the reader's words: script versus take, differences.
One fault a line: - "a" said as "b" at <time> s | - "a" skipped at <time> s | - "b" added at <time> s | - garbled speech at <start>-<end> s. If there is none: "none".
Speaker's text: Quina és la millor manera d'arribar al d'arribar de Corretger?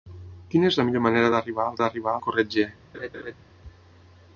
none